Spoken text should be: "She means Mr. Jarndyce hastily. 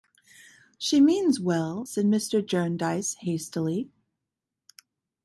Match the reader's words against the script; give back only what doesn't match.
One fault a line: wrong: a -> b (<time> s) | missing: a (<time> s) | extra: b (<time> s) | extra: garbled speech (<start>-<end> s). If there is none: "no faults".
extra: well said (1.4 s)